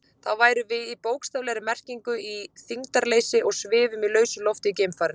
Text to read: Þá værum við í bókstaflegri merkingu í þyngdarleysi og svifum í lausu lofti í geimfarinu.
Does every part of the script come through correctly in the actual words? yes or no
yes